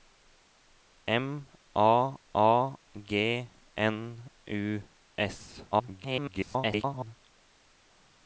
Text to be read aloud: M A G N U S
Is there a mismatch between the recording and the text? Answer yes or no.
yes